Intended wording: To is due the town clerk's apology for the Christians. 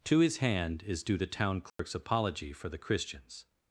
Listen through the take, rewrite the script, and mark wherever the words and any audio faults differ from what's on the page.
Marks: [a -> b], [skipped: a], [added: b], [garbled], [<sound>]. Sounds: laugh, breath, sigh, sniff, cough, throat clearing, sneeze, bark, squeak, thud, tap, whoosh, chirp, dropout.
To [added: his hand] is due the town clerk's [dropout] apology for the Christians.